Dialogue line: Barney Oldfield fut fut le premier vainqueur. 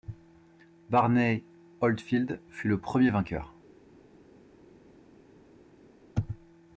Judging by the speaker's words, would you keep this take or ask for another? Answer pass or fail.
fail